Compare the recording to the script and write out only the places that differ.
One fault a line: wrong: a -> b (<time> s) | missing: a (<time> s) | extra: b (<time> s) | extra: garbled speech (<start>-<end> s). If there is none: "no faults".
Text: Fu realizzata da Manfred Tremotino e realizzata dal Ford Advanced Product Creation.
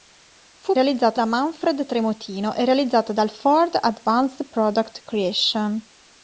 no faults